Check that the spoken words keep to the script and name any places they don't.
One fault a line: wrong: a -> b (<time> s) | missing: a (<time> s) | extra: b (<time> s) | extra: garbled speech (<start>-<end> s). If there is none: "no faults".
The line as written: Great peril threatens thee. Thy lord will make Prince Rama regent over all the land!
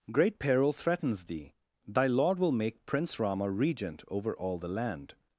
no faults